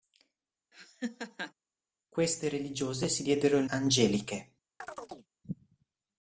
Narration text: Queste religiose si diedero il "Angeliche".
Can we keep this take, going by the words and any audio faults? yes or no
no